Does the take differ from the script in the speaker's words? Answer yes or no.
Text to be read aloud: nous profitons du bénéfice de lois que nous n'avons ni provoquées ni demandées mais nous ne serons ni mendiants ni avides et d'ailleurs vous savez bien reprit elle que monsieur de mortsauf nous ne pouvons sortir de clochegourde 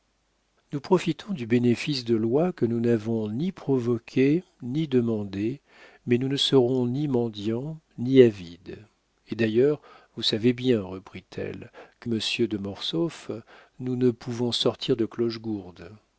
no